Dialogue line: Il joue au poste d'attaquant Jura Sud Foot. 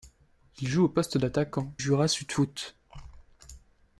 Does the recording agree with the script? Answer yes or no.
yes